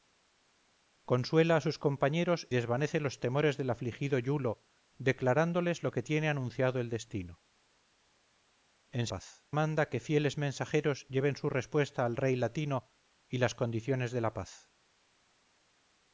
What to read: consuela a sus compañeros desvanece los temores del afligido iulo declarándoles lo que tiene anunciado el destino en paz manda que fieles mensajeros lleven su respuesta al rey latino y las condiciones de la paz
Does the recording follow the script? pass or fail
pass